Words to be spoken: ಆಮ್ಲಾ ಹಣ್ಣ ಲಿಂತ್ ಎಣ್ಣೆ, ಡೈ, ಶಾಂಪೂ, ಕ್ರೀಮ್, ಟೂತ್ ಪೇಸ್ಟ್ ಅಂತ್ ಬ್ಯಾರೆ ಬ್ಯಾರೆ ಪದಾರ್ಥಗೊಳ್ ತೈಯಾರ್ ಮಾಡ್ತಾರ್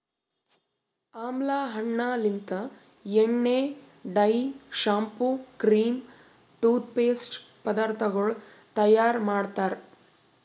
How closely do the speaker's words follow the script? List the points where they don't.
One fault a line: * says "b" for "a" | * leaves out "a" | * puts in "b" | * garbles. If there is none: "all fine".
* leaves out "ಅಂತ್ ಬ್ಯಾರೆ ಬ್ಯಾರೆ"